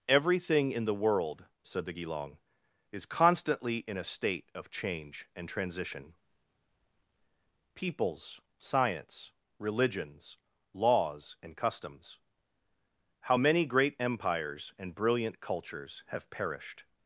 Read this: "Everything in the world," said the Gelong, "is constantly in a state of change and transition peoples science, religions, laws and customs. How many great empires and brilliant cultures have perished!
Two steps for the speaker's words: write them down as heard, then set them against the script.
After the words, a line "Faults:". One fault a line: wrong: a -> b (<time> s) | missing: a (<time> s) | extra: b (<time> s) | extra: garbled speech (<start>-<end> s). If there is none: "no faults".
"Everything in the world," said the Gelong, "is constantly in a state of change and transition peoples science, religions, laws and customs. How many great empires and brilliant cultures have perished!
Faults:
no faults